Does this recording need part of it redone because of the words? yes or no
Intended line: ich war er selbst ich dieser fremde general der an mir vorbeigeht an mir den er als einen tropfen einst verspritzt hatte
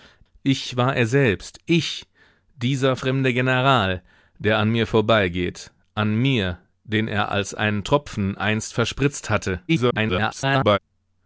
yes